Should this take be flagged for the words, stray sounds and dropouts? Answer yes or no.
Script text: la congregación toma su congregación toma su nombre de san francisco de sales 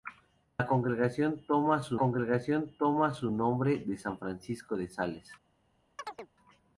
yes